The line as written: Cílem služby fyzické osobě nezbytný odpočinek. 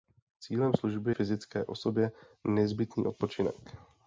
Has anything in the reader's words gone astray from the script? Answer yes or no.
no